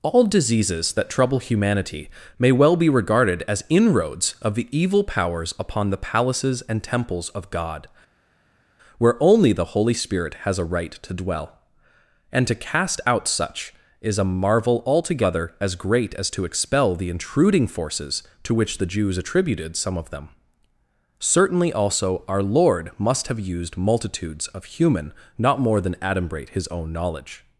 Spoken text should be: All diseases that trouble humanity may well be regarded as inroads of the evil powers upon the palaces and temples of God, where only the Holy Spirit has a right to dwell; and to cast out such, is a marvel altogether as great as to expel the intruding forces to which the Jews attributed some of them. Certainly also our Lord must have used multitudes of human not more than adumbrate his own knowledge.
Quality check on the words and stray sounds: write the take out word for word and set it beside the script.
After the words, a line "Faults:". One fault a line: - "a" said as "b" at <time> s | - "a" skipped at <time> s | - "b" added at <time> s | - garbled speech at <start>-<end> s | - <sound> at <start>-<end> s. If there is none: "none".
All diseases that trouble humanity may well be regarded as inroads of the evil powers upon the palaces and temples of God, where only the Holy Spirit has a right to dwell; and to cast out such, is a marvel altogether as great as to expel the intruding forces to which the Jews attributed some of them. Certainly also our Lord must have used multitudes of human not more than adumbrate his own knowledge.
Faults:
none